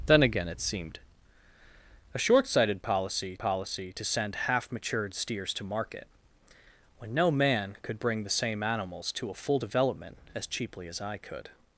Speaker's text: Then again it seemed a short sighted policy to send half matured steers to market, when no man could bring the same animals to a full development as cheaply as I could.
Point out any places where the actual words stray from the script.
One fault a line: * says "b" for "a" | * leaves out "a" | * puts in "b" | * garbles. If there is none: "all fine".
* puts in "policy"